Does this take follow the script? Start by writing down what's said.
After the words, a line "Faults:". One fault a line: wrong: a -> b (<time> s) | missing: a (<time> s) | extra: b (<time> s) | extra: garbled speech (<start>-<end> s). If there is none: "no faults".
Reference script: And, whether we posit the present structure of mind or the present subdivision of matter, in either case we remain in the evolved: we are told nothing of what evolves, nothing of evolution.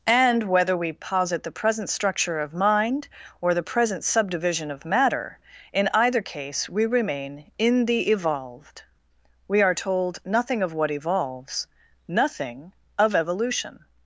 And, whether we posit the present structure of mind or the present subdivision of matter, in either case we remain in the evolved: we are told nothing of what evolves, nothing of evolution.
Faults:
no faults